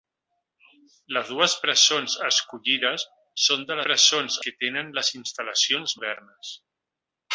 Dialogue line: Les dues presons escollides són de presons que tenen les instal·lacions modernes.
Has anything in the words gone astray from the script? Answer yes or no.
no